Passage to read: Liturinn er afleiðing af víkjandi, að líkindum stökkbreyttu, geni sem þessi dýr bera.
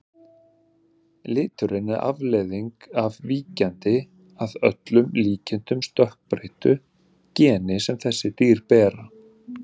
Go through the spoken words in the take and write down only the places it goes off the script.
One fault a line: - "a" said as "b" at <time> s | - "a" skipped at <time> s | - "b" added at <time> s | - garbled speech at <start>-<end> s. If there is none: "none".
- "öllum" added at 4.7 s